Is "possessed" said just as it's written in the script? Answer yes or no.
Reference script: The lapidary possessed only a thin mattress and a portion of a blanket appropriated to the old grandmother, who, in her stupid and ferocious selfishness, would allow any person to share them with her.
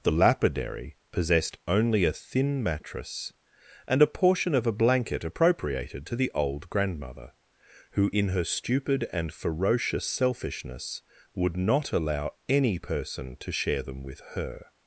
yes